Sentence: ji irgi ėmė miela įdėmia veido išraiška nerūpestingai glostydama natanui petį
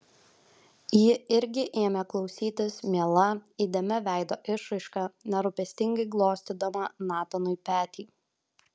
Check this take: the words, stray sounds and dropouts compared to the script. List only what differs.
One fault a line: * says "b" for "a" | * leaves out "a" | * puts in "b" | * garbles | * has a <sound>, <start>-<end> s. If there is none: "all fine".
* puts in "klausytis"